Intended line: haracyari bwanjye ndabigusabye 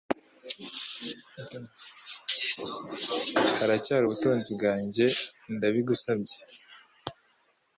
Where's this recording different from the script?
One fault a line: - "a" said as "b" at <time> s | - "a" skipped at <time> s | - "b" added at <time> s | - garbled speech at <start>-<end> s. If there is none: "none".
- "ubutunzi" added at 4.0 s